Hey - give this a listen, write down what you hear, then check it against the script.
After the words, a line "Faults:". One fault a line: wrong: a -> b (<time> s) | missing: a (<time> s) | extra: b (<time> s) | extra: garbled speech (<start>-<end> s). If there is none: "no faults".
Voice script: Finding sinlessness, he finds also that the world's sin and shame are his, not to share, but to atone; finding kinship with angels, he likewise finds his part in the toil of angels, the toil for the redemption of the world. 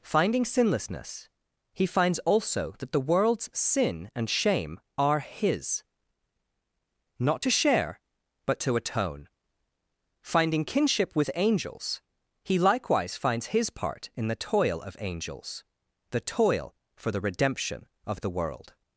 Finding sinlessness, he finds also that the world's sin and shame are his, not to share, but to atone; finding kinship with angels, he likewise finds his part in the toil of angels, the toil for the redemption of the world.
Faults:
no faults